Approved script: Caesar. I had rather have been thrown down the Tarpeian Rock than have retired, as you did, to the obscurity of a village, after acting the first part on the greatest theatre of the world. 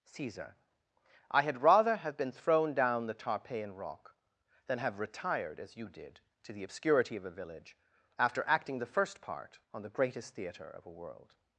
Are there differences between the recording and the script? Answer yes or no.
yes